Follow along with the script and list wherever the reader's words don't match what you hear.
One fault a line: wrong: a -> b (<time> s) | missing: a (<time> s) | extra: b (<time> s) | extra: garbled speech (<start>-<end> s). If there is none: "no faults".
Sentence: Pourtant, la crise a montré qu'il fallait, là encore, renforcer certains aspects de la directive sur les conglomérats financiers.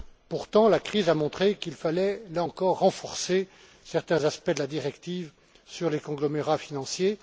no faults